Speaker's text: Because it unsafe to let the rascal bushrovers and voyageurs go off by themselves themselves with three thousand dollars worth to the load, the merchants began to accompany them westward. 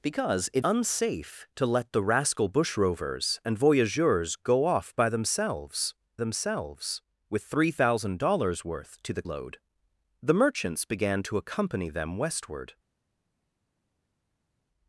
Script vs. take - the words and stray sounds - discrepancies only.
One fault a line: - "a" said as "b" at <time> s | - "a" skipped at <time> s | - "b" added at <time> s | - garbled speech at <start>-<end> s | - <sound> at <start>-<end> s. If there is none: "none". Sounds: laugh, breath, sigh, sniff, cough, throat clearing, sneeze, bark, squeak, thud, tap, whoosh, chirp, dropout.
none